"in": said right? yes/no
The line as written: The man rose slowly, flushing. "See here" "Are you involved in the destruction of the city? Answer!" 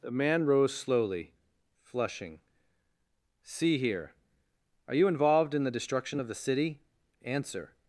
yes